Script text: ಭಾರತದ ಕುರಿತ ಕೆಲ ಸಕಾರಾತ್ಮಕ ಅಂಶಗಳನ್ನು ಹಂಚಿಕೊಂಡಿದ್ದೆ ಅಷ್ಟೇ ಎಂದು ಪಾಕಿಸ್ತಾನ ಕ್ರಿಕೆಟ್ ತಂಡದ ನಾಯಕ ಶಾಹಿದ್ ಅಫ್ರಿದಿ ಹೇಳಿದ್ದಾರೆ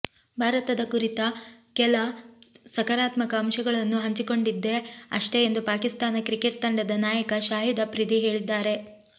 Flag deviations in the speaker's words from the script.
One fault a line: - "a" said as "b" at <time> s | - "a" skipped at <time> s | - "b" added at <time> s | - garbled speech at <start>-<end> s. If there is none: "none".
none